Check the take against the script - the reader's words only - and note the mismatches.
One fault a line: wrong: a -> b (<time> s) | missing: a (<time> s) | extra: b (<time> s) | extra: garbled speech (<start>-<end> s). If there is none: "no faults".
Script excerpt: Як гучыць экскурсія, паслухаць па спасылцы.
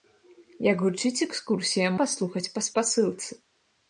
no faults